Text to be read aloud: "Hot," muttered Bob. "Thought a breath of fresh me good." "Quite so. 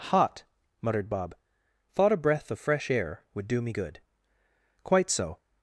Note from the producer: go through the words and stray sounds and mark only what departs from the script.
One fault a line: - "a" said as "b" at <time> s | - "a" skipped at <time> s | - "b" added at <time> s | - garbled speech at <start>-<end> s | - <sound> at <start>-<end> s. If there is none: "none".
- "air would do" added at 2.9 s